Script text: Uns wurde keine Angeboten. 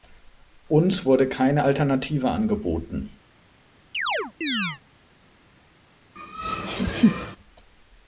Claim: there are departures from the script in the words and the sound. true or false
true